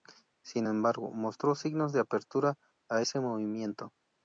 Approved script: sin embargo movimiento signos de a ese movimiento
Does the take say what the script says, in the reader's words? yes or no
no